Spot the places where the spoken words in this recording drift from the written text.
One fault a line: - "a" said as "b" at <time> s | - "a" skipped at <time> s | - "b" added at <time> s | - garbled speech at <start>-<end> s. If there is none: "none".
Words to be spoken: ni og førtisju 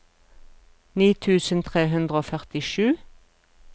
- "tusen tre hundre" added at 1.2 s